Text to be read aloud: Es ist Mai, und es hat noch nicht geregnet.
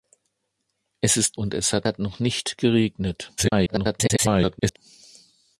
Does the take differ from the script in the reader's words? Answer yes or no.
yes